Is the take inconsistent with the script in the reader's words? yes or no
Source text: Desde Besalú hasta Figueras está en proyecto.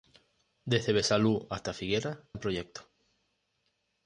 yes